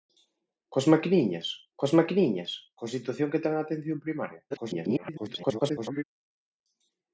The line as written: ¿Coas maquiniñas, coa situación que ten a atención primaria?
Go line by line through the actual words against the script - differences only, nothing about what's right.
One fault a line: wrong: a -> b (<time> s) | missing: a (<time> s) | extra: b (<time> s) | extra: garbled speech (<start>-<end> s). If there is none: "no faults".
extra: coas maquiniñas (1.8 s)
extra: garbled speech (4.5-6.0 s)